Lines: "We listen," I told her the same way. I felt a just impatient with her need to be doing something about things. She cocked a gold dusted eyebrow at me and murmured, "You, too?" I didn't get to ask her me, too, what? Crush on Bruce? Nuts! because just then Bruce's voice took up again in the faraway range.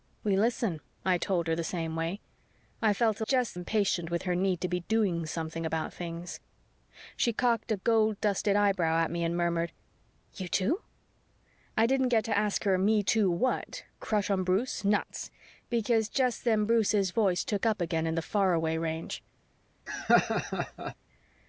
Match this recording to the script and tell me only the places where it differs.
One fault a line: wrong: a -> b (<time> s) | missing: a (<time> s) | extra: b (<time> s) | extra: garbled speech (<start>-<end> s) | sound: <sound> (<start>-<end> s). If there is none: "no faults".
sound: laugh (19.9-21.0 s)